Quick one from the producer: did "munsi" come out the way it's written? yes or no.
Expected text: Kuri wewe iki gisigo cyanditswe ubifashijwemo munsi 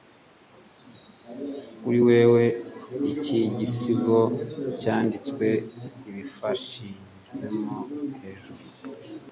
no